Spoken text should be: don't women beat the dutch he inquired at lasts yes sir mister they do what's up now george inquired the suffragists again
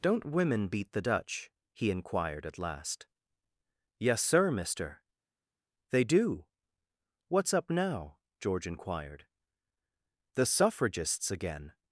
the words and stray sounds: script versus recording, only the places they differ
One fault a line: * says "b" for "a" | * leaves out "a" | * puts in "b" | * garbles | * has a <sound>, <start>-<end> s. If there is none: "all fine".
* says "last" for "lasts"